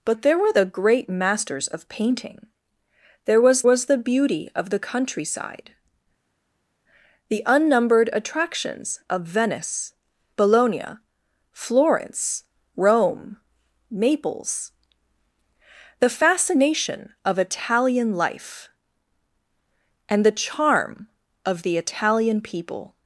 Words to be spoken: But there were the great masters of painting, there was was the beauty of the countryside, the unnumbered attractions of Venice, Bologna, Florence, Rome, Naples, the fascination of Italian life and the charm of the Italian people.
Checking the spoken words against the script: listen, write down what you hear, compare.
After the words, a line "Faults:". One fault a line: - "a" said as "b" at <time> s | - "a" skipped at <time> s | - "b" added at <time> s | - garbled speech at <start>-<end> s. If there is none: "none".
But there were the great masters of painting, there was was the beauty of the countryside, the unnumbered attractions of Venice, Bologna, Florence, Rome, Naples, the fascination of Italian life and the charm of the Italian people.
Faults:
none